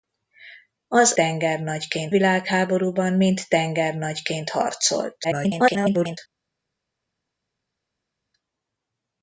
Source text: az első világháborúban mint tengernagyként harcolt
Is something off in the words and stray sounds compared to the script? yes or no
yes